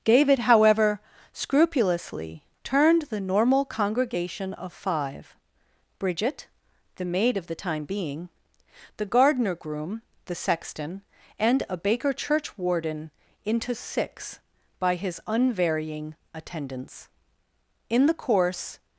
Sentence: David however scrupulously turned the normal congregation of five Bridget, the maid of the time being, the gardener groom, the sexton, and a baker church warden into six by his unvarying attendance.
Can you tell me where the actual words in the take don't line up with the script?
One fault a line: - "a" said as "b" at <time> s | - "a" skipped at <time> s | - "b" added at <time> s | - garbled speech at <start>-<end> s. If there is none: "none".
- "In the course" added at 17.9 s